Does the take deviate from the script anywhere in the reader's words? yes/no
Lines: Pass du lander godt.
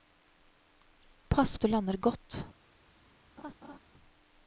no